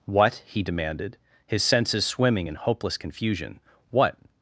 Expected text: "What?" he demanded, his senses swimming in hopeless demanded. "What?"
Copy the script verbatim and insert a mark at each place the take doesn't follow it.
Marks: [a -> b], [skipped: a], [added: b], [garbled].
"What?" he demanded, his senses swimming in hopeless [demanded. -> confusion] "What?"